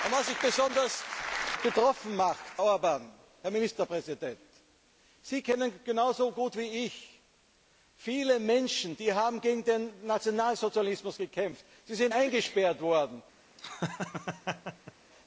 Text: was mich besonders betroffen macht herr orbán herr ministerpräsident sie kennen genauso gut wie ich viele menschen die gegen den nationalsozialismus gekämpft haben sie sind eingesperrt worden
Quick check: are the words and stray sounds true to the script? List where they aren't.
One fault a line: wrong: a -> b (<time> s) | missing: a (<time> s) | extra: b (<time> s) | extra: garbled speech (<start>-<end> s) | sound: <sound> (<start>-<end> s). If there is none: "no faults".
missing: besonders (0.4 s)
missing: herr (2.4 s)
sound: laugh (13.6-14.9 s)